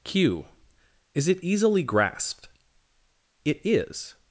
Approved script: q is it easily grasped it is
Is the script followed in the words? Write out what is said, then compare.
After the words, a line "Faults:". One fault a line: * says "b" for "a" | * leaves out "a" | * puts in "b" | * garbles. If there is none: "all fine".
q is it easily grasped it is
Faults:
all fine